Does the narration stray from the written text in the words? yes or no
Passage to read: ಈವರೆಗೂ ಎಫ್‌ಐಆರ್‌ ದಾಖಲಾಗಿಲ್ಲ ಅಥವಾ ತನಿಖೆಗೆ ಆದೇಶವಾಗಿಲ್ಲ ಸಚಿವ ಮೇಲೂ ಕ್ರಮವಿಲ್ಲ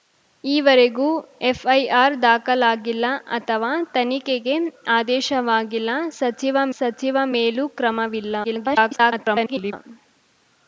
yes